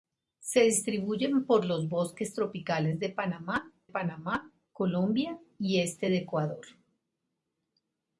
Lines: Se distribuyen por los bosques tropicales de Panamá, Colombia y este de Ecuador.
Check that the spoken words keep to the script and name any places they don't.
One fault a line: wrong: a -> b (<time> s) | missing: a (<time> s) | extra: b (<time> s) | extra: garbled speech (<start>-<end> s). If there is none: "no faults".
extra: Panamá (3.9 s)